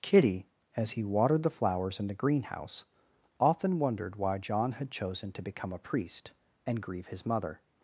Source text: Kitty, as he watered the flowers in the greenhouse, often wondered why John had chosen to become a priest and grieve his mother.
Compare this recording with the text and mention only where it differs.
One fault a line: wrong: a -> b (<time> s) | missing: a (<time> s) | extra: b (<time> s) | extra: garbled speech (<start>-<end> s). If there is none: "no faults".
no faults